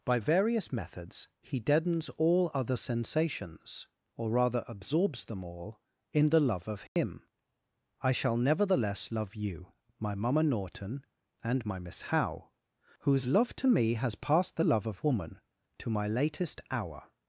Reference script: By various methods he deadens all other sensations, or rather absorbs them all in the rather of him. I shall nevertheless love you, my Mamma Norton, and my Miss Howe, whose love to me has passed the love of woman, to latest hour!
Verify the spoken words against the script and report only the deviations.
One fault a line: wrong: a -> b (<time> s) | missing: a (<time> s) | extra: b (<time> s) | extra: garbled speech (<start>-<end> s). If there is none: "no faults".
wrong: rather -> love (6.4 s)
extra: my (15.9 s)